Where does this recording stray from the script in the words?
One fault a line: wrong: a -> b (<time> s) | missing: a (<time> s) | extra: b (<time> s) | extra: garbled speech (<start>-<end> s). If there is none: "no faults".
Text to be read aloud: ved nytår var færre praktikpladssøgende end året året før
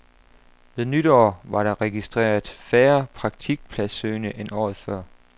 extra: der registreret (1.6 s)
missing: året (4.8 s)